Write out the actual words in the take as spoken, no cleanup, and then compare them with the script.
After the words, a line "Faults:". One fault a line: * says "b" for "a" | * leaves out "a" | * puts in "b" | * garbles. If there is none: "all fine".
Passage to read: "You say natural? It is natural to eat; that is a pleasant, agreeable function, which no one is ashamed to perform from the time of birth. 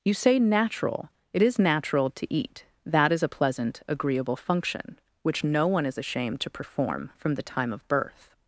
"You say natural? It is natural to eat; that is a pleasant, agreeable function, which no one is ashamed to perform from the time of birth.
Faults:
all fine